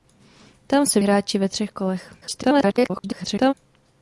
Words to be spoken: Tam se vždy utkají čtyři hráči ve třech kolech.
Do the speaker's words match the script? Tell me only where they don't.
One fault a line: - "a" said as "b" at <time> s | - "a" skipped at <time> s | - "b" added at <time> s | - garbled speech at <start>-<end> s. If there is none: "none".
- "vždy utkají čtyři" skipped at 1.0 s
- garbled speech at 2.2-3.5 s